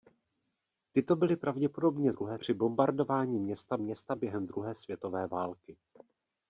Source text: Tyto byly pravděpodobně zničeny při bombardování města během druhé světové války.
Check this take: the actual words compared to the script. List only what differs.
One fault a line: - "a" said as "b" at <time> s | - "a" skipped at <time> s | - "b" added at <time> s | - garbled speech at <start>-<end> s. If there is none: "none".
- "zničeny" said as "druhé" at 2.1 s
- "města" added at 3.8 s